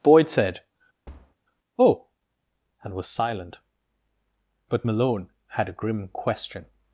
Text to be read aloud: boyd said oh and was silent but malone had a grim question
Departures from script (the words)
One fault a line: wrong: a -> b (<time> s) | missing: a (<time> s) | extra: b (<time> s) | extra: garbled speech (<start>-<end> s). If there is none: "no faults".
no faults